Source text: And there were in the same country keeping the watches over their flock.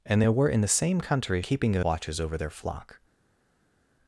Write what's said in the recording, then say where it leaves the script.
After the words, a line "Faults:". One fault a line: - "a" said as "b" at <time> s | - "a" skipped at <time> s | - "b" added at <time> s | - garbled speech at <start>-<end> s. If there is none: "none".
And there were in the same country keeping the watches over their flock.
Faults:
none